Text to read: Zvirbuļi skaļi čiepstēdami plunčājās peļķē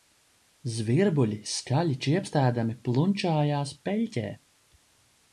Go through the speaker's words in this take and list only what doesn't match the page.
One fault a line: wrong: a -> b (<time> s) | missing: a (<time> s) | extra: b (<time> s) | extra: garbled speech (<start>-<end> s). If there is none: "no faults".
no faults